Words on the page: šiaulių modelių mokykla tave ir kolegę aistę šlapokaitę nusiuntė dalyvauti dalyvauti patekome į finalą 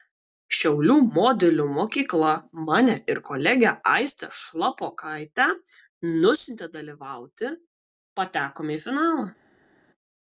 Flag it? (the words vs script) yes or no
yes